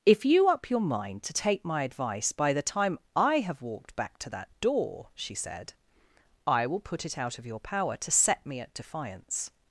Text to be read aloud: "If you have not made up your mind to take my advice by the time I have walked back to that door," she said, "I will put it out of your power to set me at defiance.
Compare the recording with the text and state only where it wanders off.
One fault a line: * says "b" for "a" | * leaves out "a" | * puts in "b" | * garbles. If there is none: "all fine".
* leaves out "have not made"